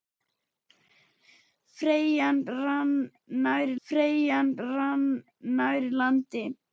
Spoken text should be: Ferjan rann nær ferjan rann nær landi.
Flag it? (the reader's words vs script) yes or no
no